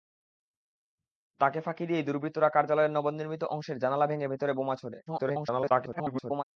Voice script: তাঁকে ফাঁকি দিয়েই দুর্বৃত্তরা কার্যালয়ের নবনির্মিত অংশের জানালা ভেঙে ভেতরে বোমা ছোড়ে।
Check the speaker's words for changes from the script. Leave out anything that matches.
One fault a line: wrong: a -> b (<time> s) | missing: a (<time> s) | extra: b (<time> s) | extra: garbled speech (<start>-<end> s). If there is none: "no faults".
extra: garbled speech (5.1-6.4 s)